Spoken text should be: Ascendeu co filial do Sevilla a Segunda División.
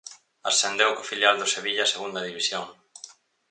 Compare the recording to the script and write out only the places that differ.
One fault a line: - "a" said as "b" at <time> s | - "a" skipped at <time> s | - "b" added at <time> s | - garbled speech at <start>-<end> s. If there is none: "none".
none